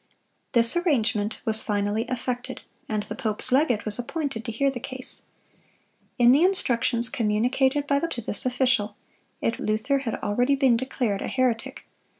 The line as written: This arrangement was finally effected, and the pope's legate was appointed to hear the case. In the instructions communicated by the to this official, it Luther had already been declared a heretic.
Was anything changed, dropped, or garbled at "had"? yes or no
no